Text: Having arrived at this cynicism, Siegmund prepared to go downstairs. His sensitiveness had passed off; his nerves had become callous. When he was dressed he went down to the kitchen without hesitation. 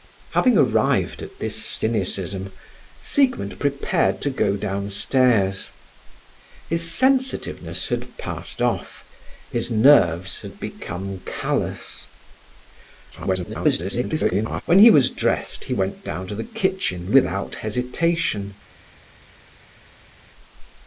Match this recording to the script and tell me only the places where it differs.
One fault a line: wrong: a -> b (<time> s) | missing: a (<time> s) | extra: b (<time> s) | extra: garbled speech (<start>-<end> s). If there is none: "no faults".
extra: garbled speech (13.1-14.6 s)